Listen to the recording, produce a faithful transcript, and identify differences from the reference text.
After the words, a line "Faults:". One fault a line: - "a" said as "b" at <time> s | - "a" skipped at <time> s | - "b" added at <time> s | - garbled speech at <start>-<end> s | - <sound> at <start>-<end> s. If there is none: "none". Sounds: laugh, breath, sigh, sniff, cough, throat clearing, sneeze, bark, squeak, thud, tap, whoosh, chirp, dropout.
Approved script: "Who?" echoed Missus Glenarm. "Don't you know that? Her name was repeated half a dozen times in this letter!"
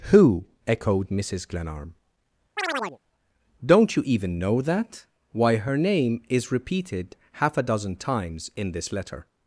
"Who?" echoed Missus Glenarm. "Don't you even know that? Why her name is repeated half a dozen times in this letter!"
Faults:
- chirp at 2.6-3.0 s
- "even" added at 4.0 s
- "Why" added at 5.3 s
- "was" said as "is" at 6.3 s